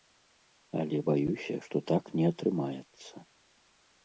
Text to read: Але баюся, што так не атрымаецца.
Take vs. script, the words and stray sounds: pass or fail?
pass